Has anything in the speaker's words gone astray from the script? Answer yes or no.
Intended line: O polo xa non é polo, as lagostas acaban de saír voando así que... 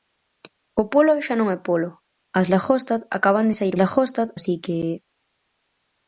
yes